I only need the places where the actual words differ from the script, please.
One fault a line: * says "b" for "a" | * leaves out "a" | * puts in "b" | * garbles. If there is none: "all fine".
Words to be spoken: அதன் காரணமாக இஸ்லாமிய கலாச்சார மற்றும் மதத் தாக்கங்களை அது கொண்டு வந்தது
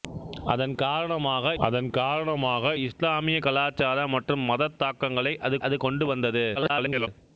* puts in "அதன் காரணமாக"
* puts in "அது"
* garbles